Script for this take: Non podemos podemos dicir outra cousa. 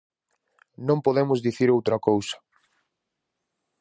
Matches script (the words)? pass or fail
fail